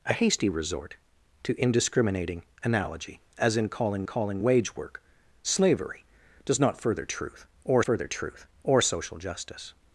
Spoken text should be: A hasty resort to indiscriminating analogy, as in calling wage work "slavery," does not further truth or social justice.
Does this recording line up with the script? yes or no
no